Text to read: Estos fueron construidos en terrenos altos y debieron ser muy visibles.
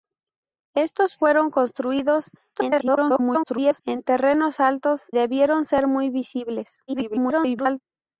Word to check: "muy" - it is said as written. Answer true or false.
true